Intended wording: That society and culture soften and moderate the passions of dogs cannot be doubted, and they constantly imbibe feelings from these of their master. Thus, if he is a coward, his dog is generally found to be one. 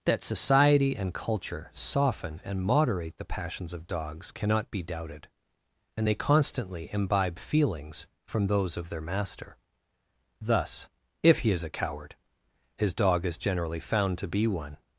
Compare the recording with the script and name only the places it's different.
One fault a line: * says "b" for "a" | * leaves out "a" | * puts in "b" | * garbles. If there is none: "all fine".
* says "those" for "these"